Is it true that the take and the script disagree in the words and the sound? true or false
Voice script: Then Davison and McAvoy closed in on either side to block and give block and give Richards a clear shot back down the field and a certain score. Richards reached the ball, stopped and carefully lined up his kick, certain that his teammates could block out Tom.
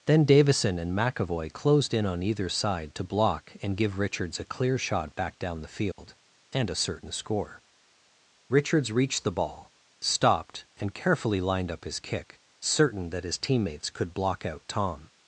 true